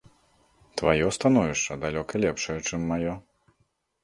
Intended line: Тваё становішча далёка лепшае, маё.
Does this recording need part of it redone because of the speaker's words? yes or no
yes